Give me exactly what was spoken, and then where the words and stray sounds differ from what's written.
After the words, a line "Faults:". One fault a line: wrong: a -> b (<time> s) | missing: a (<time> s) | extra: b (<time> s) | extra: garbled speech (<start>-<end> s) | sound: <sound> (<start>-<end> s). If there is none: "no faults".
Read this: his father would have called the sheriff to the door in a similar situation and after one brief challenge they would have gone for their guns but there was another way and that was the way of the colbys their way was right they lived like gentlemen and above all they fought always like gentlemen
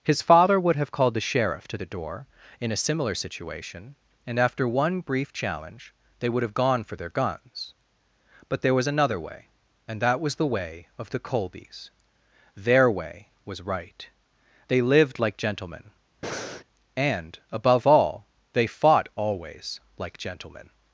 his father would have called the sheriff to the door in a similar situation and after one brief challenge they would have gone for their guns but there was another way and that was the way of the colbys their way was right they lived like gentlemen and above all they fought always like gentlemen
Faults:
sound: breath (16.2-16.6 s)